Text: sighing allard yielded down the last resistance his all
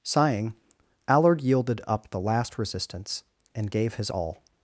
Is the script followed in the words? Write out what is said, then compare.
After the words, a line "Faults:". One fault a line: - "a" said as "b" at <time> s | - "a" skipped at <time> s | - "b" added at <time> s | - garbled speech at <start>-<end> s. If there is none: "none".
sighing allard yielded up the last resistance and gave his all
Faults:
- "down" said as "up" at 1.9 s
- "and gave" added at 3.5 s